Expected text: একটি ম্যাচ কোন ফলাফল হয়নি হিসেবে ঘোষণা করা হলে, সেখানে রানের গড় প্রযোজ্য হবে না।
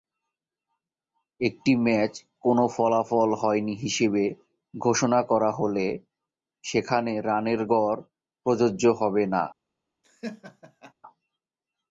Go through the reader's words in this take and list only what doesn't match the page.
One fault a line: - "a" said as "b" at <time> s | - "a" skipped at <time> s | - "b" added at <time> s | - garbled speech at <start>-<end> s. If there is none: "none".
none